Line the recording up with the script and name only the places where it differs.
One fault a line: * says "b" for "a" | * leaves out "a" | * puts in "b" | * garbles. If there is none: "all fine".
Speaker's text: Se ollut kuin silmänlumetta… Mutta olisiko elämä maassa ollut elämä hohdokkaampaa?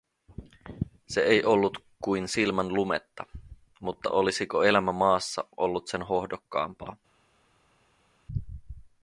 * puts in "ei"
* says "sen" for "elämä"